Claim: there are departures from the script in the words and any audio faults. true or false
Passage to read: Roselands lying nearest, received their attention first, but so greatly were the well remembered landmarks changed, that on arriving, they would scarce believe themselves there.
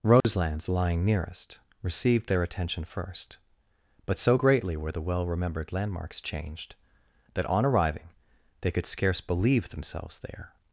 true